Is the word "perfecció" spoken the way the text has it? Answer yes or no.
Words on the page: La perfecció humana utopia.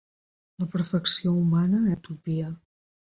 yes